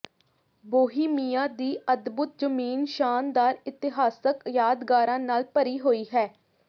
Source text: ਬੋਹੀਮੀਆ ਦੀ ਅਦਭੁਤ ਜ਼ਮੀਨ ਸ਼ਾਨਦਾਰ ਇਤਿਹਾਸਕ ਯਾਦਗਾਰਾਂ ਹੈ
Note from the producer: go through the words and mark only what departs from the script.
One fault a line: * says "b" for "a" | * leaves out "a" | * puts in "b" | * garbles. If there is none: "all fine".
* puts in "ਨਾਲ ਭਰੀ ਹੋਈ"